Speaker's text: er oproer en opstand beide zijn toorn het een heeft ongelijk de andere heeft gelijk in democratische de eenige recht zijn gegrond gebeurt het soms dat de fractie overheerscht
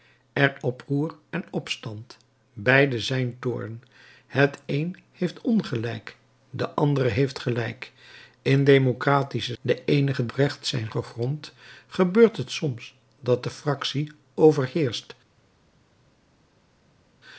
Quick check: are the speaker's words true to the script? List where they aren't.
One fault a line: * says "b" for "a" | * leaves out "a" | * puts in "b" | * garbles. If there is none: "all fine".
all fine